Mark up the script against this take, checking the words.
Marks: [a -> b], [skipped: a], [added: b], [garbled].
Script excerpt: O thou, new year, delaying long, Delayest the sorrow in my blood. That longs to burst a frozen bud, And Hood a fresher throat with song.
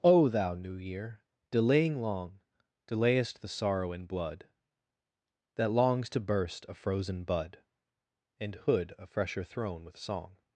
O thou, new year, delaying long, Delayest the sorrow in [skipped: my] blood. That longs to burst a frozen bud, And Hood a fresher [throat -> throne] with song.